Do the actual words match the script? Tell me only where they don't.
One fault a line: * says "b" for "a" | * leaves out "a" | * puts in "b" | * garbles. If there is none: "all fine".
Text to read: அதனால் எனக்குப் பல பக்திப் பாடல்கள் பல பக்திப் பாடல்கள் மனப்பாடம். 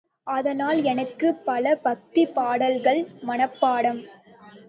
* leaves out "பல பக்திப் பாடல்கள்"